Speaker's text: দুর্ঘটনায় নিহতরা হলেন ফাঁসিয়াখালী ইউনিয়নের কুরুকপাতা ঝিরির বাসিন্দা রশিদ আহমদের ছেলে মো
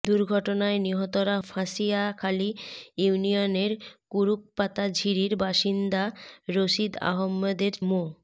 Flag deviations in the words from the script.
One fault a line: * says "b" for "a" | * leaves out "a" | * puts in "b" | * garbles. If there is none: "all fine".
* leaves out "হলেন"
* leaves out "ছেলে"